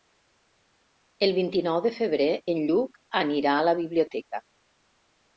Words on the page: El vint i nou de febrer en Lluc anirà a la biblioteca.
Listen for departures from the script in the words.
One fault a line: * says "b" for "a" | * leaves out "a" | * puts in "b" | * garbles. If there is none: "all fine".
all fine